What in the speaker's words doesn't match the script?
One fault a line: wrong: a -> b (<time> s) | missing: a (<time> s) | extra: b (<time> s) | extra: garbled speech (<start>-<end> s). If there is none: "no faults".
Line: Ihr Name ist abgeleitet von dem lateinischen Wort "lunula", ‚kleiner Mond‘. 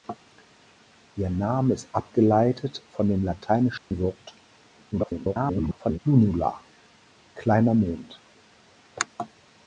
extra: garbled speech (4.9-6.0 s)